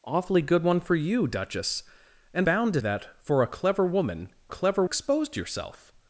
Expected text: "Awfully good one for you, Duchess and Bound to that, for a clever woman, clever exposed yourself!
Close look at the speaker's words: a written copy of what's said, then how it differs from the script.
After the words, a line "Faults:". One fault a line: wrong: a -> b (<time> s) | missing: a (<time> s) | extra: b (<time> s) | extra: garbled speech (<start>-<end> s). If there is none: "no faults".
"Awfully good one for you, Duchess and Bound to that, for a clever woman, clever exposed yourself!
Faults:
no faults